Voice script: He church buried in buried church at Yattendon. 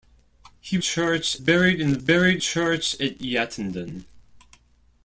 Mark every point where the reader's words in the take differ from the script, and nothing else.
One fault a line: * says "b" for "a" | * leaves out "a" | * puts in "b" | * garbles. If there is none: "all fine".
all fine